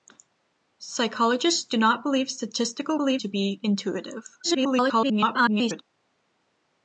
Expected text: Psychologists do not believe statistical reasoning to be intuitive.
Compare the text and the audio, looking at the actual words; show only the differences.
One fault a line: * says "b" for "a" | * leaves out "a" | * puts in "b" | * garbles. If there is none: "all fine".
* says "believe" for "reasoning"
* garbles